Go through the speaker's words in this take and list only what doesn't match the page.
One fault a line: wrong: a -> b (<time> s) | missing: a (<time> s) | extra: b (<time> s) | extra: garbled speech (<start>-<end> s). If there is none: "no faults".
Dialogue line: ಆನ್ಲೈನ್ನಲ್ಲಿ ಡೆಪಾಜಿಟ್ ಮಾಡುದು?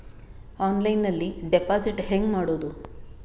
extra: ಹೆಂಗ್ (2.0 s)